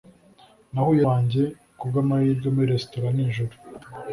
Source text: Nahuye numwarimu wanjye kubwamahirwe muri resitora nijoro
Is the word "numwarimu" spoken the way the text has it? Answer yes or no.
no